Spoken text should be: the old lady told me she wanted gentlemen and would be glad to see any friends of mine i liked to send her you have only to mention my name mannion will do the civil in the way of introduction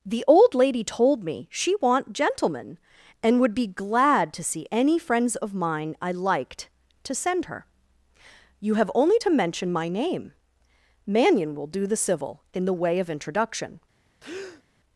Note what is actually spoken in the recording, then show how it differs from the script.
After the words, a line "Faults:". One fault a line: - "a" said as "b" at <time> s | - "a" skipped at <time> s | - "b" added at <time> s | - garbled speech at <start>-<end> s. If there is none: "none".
the old lady told me she want gentlemen and would be glad to see any friends of mine i liked to send her you have only to mention my name mannion will do the civil in the way of introduction
Faults:
- "wanted" said as "want" at 1.8 s